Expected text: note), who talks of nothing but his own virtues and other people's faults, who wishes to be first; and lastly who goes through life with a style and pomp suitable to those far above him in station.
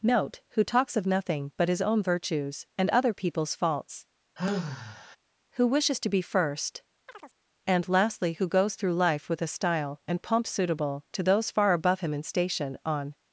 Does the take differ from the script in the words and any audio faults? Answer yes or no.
yes